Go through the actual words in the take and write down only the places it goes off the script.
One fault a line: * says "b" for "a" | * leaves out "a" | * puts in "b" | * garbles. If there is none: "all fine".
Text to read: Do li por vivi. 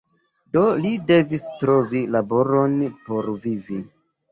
* puts in "devis trovi laboron"